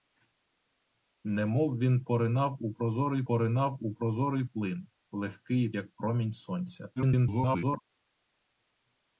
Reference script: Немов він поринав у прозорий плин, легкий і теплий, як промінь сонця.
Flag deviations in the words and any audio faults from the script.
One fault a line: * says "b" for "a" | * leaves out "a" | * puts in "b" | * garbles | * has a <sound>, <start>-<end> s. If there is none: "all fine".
* puts in "поринав у прозорий"
* leaves out "теплий"
* garbles